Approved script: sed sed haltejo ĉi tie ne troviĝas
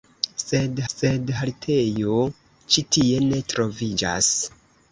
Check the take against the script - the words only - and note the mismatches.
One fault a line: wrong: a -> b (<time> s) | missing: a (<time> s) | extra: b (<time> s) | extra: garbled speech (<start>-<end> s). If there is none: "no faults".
no faults